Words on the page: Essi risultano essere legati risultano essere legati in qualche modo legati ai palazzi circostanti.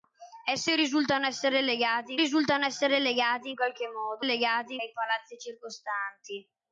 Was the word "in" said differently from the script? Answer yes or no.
no